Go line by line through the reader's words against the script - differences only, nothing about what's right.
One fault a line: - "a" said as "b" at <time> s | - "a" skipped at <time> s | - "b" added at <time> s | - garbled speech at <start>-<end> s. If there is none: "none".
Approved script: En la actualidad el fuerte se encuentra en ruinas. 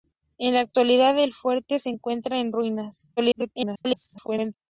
- garbled speech at 3.2-4.5 s